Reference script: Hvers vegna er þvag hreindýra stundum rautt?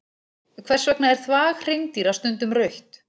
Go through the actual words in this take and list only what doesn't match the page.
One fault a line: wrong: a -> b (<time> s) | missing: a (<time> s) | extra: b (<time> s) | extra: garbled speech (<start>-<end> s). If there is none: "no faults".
no faults